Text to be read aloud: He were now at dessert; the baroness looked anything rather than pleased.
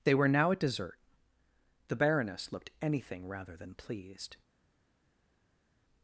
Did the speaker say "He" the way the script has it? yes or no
no